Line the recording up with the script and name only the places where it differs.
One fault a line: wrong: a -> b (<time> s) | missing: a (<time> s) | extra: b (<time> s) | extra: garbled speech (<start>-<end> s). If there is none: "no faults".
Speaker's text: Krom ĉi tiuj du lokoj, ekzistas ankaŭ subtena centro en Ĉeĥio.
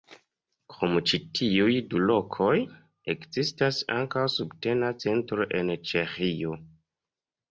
no faults